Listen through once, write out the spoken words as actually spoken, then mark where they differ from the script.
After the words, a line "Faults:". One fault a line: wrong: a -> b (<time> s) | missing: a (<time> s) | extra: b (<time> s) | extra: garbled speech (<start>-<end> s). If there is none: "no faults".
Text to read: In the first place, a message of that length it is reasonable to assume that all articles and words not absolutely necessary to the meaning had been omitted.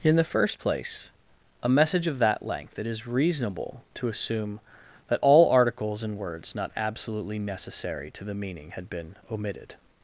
In the first place, a message of that length it is reasonable to assume that all articles and words not absolutely necessary to the meaning had been omitted.
Faults:
no faults